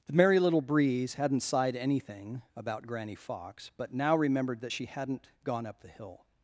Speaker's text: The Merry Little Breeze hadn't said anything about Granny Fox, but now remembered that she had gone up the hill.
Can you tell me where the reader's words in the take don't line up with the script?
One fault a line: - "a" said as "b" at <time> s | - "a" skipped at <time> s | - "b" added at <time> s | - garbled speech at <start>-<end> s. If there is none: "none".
- "said" said as "sighed" at 1.4 s
- "had" said as "hadn't" at 4.9 s